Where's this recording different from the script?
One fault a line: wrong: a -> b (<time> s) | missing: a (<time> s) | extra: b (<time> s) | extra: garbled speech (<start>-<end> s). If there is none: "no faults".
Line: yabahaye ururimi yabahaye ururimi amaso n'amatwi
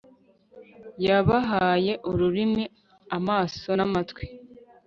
missing: yabahaye ururimi (2.6 s)